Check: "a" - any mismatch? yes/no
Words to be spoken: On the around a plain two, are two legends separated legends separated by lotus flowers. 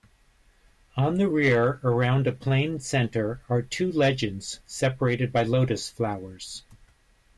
no